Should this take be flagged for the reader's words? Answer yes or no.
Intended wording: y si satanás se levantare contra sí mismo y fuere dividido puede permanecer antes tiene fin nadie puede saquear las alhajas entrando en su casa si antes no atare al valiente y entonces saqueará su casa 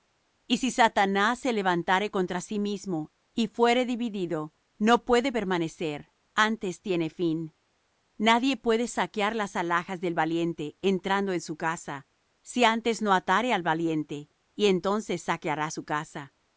yes